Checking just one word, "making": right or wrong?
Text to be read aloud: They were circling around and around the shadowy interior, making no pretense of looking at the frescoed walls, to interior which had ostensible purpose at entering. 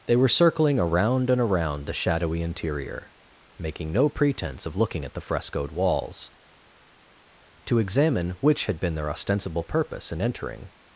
right